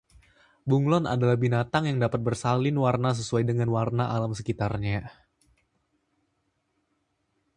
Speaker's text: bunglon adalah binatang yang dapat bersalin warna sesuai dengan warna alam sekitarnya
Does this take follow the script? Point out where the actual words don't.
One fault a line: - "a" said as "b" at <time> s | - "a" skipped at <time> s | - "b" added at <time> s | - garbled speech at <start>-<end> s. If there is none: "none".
none